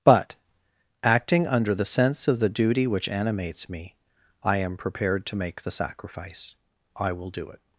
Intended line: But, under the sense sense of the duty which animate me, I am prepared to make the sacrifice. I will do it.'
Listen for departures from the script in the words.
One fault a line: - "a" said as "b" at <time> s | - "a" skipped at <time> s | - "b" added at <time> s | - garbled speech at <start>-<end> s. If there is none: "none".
- "acting" added at 1.0 s
- "sense" skipped at 2.3 s
- "animate" said as "animates" at 3.1 s